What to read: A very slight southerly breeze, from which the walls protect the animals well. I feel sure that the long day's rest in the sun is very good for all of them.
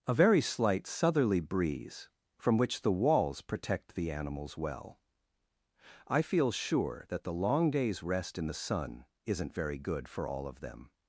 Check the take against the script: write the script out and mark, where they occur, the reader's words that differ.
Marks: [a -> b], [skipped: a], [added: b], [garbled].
A very slight southerly breeze, from which the walls protect the animals well. I feel sure that the long day's rest in the sun [is -> isn't] very good for all of them.